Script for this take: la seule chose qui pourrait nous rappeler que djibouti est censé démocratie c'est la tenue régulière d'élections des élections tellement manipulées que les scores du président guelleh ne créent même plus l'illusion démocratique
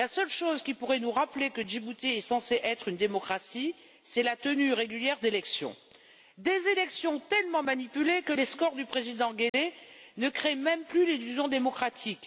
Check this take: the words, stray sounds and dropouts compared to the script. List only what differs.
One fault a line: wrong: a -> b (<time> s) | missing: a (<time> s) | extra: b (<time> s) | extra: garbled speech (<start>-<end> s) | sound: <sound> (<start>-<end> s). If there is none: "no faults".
extra: être une (2.6 s)
sound: dropout (9.5-9.5 s)